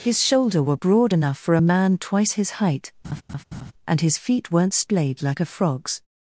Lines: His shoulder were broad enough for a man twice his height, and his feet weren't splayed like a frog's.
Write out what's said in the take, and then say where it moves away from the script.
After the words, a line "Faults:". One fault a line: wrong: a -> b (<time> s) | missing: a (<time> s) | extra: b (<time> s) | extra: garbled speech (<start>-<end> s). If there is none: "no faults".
His shoulder were broad enough for a man twice his height, and his feet weren't splayed like a frog's.
Faults:
no faults